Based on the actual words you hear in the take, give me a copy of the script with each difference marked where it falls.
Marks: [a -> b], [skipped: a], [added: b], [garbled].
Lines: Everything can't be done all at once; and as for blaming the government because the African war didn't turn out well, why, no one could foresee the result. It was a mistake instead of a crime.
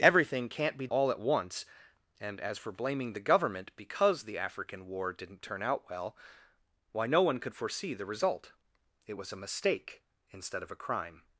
Everything can't be [skipped: done] all at once; and as for blaming the government because the African war didn't turn out well, why, no one could foresee the result. It was a mistake instead of a crime.